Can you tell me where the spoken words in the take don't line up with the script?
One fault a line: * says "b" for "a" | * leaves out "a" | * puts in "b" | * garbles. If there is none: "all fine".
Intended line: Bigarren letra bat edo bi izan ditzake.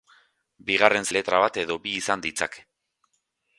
all fine